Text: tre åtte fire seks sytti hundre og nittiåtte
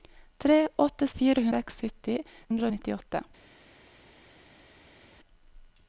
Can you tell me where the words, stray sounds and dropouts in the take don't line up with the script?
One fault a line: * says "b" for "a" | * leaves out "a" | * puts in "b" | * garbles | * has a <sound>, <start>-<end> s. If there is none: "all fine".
all fine